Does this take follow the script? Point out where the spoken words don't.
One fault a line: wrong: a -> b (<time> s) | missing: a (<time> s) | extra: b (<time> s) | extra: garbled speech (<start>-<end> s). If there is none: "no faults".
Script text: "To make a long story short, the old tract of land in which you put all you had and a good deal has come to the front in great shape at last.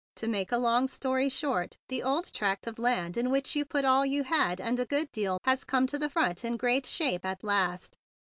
no faults